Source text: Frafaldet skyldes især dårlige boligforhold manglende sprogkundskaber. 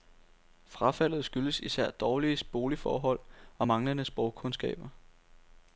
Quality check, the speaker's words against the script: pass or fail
fail